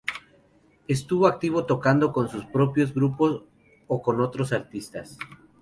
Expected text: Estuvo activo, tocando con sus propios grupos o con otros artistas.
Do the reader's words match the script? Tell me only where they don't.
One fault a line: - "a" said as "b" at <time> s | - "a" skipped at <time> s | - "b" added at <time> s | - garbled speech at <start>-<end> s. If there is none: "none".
none